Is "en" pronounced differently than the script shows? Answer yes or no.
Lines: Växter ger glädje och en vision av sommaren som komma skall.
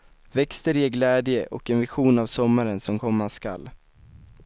no